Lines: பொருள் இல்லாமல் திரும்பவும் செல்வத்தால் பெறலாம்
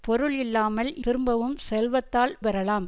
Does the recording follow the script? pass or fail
pass